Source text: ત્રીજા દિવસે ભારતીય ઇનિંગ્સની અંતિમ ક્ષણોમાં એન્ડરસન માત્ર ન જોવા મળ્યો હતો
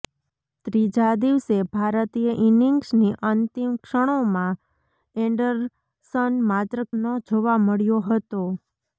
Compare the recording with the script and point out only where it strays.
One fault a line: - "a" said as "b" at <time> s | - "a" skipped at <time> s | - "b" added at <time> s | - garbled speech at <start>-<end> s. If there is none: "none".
none